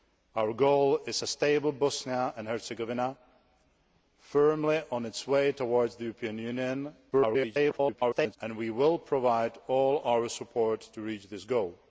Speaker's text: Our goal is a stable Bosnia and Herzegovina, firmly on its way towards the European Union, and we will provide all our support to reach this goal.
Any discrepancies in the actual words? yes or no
yes